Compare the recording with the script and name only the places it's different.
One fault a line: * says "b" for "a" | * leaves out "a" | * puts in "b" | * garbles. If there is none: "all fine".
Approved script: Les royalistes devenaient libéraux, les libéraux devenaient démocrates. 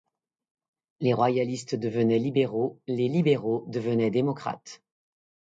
all fine